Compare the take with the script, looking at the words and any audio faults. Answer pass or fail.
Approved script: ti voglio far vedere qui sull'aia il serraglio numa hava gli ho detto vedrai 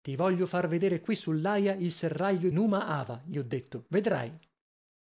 pass